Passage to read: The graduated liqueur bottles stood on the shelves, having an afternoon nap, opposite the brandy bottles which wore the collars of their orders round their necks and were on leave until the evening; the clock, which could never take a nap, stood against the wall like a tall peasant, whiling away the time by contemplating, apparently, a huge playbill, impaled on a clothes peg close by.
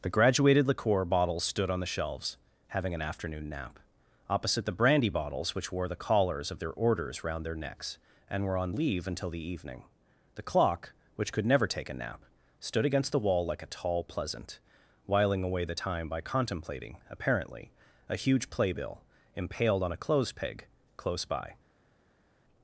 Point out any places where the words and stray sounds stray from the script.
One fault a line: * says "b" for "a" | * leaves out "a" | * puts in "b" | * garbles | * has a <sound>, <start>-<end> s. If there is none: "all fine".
* says "pleasant" for "peasant"